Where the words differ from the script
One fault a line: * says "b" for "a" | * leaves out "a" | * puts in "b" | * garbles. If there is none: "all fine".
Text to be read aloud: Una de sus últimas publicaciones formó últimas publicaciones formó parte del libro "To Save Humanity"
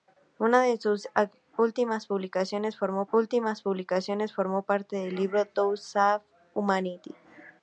all fine